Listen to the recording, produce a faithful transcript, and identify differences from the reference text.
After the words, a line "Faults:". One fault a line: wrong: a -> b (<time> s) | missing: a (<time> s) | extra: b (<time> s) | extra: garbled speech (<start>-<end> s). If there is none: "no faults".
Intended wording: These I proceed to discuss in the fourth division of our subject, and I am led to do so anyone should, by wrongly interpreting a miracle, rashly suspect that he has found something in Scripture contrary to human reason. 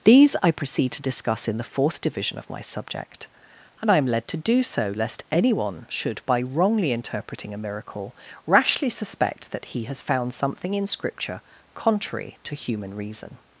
These I proceed to discuss in the fourth division of my subject, and I am led to do so lest anyone should, by wrongly interpreting a miracle, rashly suspect that he has found something in Scripture contrary to human reason.
Faults:
wrong: our -> my (2.5 s)
extra: lest (5.0 s)